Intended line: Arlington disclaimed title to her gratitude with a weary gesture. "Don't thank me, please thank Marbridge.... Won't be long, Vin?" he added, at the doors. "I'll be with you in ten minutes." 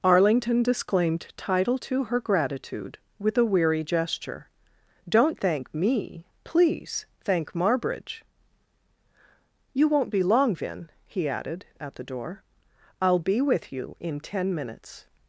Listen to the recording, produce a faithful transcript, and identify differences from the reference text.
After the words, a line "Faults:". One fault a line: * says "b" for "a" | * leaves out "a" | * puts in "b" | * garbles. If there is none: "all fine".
Arlington disclaimed title to her gratitude with a weary gesture. "Don't thank me, please thank Marbridge.... You won't be long, Vin?" he added, at the door. "I'll be with you in ten minutes."
Faults:
* puts in "You"
* says "door" for "doors"